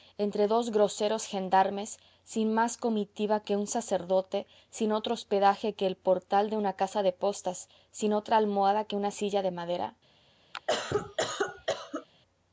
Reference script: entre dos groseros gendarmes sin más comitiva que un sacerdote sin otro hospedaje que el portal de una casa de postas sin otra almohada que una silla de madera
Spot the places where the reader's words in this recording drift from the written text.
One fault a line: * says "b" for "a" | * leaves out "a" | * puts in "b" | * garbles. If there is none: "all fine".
all fine